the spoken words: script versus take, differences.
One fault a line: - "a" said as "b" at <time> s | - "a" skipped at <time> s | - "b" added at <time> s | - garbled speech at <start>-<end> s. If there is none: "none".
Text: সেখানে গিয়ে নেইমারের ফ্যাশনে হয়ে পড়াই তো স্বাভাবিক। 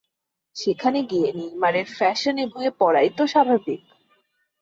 none